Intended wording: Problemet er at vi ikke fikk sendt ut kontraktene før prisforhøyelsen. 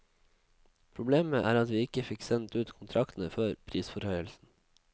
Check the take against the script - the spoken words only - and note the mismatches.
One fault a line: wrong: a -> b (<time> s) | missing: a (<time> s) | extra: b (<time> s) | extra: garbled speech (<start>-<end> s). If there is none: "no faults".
no faults